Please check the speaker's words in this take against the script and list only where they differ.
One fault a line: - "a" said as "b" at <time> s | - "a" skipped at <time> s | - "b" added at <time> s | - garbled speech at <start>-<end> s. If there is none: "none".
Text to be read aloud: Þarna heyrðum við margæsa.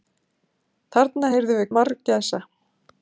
none